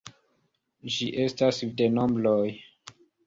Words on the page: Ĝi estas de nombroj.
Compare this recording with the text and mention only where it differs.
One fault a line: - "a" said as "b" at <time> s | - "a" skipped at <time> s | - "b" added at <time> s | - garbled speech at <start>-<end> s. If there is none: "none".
none